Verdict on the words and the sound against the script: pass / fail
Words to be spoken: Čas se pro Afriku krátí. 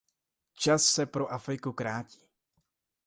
pass